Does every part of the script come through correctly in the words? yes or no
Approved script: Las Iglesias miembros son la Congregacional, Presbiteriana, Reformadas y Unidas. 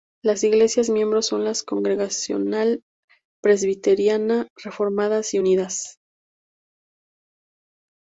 yes